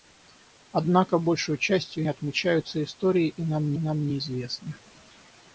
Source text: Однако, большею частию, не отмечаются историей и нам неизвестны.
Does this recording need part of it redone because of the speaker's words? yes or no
yes